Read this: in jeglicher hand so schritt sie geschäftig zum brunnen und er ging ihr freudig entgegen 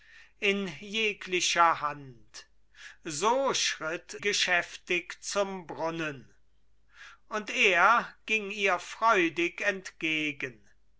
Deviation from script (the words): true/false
true